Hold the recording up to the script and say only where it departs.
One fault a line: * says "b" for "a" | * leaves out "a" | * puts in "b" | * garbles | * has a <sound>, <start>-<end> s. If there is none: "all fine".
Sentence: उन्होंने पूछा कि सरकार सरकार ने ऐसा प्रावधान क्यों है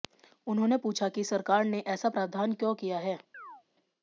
* leaves out "सरकार"
* puts in "किया"
* has a chirp, 3.3-3.6 s